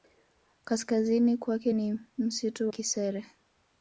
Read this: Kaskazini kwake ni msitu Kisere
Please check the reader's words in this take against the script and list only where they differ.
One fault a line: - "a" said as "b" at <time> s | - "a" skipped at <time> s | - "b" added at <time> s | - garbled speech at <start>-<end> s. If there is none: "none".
none